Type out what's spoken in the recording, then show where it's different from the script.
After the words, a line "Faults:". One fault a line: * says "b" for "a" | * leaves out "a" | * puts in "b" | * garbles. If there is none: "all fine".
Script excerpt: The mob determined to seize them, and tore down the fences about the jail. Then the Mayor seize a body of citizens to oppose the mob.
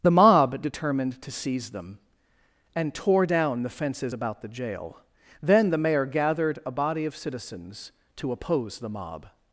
The mob determined to seize them, and tore down the fences about the jail. Then the Mayor gathered a body of citizens to oppose the mob.
Faults:
* says "gathered" for "seize"